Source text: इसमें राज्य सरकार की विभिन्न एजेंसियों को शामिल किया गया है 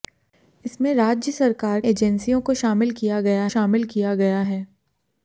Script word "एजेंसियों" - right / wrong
wrong